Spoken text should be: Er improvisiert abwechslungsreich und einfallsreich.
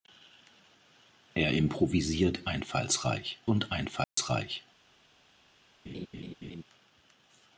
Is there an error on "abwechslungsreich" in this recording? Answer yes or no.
yes